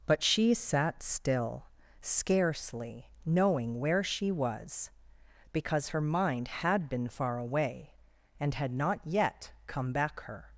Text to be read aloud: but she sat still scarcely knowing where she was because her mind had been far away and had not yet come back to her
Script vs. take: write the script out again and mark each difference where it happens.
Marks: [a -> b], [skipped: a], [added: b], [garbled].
but she sat still scarcely knowing where she was because her mind had been far away and had not yet come back [skipped: to] her